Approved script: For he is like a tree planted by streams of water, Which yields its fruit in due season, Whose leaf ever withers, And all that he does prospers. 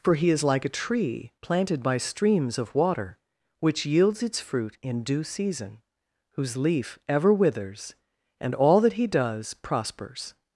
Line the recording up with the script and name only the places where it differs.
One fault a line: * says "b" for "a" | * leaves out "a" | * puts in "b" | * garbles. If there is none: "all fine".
all fine